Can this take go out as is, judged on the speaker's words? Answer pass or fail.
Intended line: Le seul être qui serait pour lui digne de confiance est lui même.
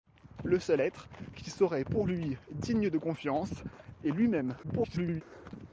fail